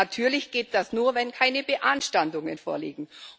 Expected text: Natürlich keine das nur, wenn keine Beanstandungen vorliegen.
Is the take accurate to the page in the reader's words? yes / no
no